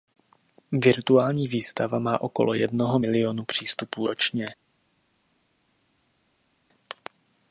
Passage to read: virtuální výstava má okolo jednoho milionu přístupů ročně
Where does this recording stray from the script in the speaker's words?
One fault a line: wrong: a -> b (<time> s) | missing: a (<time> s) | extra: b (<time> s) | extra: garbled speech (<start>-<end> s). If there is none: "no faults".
no faults